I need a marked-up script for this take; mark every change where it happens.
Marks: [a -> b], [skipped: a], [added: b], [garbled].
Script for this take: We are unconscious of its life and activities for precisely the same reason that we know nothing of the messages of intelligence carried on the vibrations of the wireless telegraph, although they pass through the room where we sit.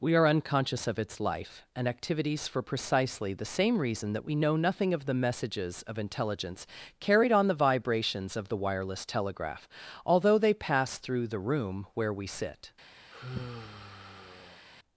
We are unconscious of its life and activities for precisely the same reason that we know nothing of the messages of intelligence carried on the vibrations of the wireless telegraph, although they pass through the room where we sit.